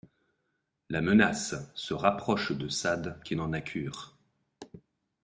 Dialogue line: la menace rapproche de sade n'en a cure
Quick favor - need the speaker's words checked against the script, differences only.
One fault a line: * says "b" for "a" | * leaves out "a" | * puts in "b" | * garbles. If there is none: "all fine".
* puts in "se"
* puts in "qui"